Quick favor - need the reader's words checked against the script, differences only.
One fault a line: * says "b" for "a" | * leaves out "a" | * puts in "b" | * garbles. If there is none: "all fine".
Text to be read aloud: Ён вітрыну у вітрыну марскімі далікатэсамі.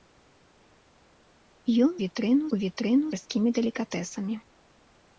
all fine